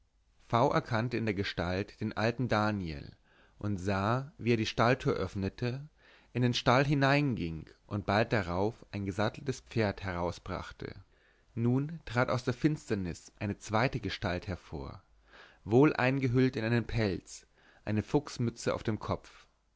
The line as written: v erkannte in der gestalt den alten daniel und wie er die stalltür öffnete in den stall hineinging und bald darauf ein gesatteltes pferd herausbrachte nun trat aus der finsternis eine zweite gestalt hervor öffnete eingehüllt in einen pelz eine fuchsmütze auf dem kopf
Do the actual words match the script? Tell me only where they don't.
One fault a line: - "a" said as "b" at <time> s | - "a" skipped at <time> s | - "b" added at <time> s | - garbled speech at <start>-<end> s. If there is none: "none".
- "sah" added at 3.8 s
- "öffnete" said as "wohl" at 15.7 s